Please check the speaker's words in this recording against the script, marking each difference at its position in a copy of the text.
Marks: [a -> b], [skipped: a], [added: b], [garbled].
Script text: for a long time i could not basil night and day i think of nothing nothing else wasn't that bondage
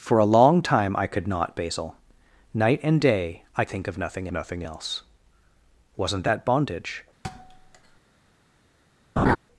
for a long time i could not basil night and day i think of nothing nothing else wasn't that bondage